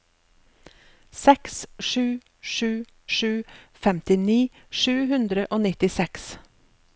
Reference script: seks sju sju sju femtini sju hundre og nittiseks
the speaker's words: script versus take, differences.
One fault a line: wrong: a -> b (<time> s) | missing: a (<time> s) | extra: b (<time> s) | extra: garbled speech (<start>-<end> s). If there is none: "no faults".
no faults